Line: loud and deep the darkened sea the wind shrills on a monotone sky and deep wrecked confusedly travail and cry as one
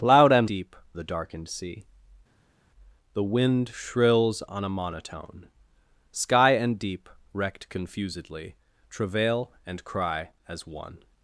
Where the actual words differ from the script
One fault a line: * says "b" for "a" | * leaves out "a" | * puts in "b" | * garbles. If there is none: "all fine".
all fine